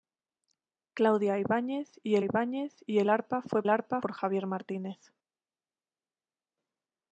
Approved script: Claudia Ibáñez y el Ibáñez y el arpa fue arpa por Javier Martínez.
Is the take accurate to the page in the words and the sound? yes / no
yes